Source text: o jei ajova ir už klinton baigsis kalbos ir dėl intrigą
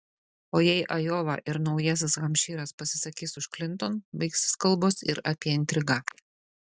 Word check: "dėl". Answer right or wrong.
wrong